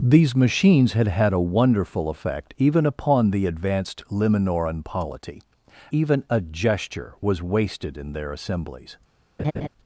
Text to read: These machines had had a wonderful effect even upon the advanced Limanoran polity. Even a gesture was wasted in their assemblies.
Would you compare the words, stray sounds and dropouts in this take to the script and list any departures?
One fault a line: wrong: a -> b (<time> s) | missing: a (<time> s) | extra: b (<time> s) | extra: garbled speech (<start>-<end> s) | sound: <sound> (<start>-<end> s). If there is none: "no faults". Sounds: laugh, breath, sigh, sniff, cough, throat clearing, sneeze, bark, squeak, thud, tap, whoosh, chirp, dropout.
sound: laugh (9.4-9.7 s)